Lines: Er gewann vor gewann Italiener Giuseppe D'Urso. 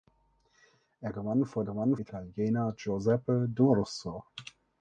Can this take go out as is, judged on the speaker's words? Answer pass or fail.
pass